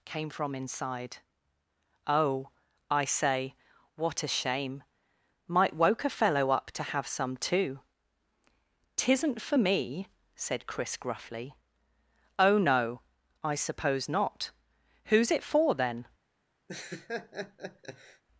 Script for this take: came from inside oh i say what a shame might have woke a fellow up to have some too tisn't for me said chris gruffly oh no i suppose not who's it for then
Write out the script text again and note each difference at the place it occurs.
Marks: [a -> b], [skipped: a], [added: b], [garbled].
came from inside oh i say what a shame might [skipped: have] woke a fellow up to have some too tisn't for me said chris gruffly oh no i suppose not who's it for then